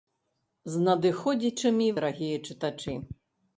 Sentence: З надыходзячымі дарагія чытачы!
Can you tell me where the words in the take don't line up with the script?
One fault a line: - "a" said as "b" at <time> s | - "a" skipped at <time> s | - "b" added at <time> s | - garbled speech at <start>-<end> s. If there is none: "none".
none